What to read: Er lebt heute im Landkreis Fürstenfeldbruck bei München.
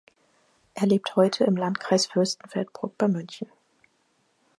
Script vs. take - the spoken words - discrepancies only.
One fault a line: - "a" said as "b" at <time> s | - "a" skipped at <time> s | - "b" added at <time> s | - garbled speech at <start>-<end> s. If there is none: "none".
none